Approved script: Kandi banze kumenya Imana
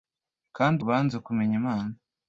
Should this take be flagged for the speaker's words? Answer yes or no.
no